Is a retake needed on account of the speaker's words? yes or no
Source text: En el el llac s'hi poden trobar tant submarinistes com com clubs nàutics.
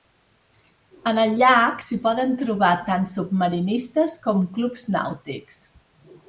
yes